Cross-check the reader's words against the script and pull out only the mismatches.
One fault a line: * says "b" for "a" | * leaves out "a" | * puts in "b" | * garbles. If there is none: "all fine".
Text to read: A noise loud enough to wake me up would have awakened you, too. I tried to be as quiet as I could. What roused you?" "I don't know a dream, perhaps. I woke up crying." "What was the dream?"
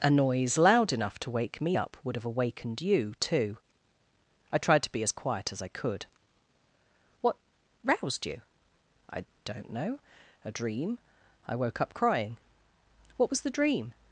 * leaves out "perhaps"